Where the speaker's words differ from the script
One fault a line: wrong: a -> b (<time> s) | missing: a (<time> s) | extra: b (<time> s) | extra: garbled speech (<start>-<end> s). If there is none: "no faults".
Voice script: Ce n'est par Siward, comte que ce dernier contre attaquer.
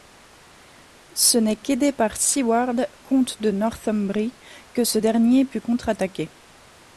extra: qu'aidé (1.6 s)
extra: de Northumbrie (3.4 s)
extra: put (5.4 s)